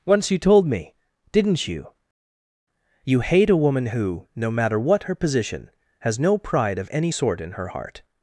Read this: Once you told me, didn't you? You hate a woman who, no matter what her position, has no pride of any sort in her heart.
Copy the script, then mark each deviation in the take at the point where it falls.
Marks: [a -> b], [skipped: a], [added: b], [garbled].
Once you told me, didn't you? You hate a woman who, no matter what her position, has no pride of any sort in her heart.